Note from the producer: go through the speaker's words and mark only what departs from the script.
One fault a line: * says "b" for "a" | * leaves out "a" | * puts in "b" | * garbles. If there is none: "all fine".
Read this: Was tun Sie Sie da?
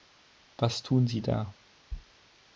* leaves out "Sie"